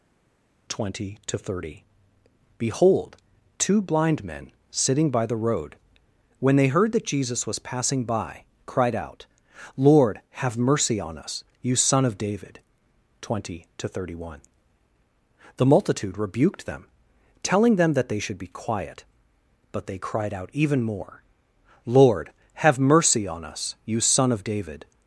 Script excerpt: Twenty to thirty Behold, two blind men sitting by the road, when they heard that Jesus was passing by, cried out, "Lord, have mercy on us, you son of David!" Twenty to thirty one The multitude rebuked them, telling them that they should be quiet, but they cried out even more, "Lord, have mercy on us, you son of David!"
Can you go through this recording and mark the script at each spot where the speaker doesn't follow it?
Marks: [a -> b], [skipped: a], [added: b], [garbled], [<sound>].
Twenty to thirty Behold, two blind men sitting by the road, when they heard that Jesus was passing by, cried out, "Lord, have mercy on us, you son of David!" Twenty to thirty one The multitude rebuked them, telling them that they should be quiet, but they cried out even more, "Lord, have mercy on us, you son of David!"